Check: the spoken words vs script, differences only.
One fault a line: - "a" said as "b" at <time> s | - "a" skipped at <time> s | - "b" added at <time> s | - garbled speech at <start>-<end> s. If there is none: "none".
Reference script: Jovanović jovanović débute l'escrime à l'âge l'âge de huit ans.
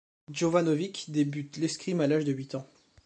- "jovanović" skipped at 1.1 s
- "l'âge" skipped at 2.2 s